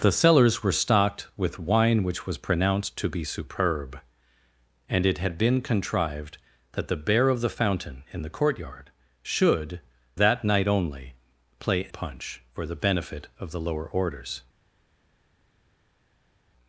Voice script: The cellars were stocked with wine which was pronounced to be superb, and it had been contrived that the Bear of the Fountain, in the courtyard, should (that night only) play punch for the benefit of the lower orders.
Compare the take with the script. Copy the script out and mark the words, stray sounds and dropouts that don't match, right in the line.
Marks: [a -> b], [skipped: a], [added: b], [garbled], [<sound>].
The cellars were stocked with wine which was pronounced to be superb, and it had been contrived that the Bear of the Fountain, in the courtyard, should (that night only) play punch for the benefit of the lower orders.